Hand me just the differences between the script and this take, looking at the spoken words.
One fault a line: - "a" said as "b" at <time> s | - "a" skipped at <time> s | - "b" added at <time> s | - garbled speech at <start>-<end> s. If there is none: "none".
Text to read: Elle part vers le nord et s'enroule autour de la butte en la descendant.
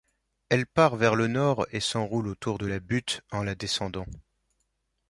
none